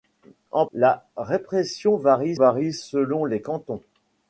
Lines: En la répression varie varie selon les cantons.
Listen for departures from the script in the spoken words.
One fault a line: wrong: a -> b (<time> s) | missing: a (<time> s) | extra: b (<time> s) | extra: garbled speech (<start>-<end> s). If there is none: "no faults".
no faults